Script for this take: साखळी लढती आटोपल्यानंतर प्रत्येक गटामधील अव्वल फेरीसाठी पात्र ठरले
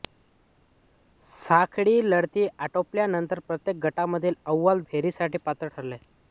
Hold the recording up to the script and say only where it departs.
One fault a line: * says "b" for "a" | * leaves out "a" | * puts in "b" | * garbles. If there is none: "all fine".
all fine